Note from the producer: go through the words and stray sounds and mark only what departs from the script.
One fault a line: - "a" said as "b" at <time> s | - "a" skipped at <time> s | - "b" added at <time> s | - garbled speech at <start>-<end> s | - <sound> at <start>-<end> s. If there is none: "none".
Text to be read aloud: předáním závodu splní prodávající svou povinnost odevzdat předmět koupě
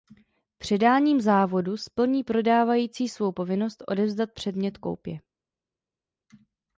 none